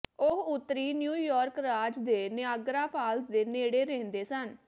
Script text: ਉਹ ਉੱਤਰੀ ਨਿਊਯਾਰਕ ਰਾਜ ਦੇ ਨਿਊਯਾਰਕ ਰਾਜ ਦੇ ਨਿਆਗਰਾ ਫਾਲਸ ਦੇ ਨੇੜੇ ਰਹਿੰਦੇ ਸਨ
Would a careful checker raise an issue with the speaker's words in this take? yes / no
yes